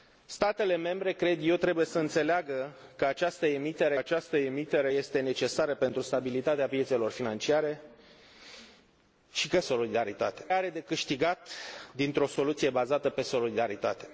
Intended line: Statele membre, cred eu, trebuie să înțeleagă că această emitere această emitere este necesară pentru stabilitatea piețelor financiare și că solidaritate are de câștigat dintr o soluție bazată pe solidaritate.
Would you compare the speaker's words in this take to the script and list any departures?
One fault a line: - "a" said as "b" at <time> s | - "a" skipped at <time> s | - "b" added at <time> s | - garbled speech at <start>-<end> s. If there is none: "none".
none